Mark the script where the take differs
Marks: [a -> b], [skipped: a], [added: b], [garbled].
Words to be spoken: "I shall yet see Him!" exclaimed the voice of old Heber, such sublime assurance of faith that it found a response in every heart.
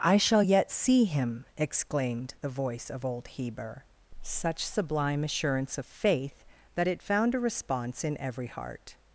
"I shall yet see Him!" exclaimed the voice of old Heber, such sublime assurance of faith that it found a response in every heart.